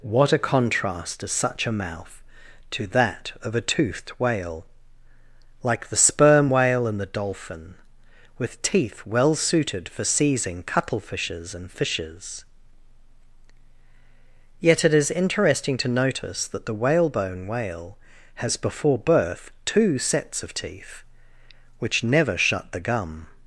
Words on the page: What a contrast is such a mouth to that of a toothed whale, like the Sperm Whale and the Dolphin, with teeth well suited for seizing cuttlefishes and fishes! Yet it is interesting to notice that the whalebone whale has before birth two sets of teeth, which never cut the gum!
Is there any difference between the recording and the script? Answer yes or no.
yes